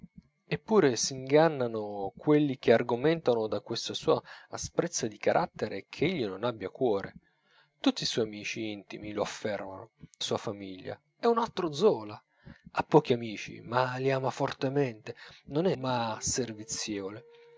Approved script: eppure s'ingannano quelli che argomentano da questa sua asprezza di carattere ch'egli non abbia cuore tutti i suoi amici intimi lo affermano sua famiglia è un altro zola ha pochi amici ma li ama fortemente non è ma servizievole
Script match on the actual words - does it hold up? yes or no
yes